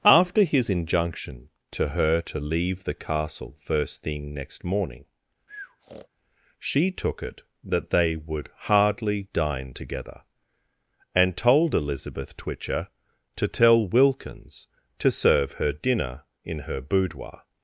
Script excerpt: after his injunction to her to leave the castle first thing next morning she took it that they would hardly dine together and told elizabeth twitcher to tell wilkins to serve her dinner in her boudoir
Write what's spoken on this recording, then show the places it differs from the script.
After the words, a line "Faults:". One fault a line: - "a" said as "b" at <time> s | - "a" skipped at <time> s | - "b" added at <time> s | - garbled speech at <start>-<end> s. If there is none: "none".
after his injunction to her to leave the castle first thing next morning she took it that they would hardly dine together and told elizabeth twitcher to tell wilkins to serve her dinner in her boudoir
Faults:
none